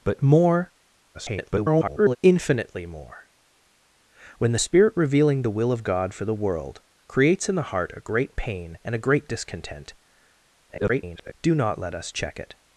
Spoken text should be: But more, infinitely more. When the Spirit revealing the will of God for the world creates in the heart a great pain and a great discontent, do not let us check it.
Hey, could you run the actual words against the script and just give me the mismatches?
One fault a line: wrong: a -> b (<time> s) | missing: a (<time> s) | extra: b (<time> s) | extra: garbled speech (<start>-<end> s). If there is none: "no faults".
extra: garbled speech (1.1-2.2 s)
extra: garbled speech (10.7-11.3 s)